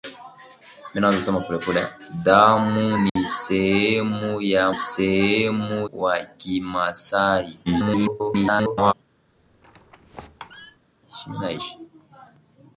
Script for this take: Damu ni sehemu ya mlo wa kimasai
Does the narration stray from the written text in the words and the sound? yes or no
yes